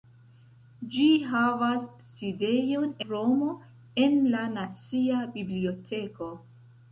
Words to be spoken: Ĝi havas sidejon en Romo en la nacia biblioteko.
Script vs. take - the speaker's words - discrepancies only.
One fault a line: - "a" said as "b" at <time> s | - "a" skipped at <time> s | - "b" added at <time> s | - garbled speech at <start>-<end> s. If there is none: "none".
- "en" skipped at 2.9 s